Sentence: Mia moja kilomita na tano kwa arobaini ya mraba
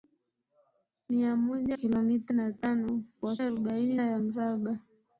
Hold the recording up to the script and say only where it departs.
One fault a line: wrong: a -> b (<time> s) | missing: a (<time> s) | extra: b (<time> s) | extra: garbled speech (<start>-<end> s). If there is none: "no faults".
no faults